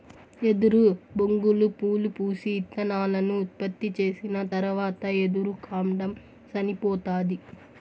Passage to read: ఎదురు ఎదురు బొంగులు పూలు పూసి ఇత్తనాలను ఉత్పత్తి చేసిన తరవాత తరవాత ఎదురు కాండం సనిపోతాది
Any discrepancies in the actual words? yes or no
yes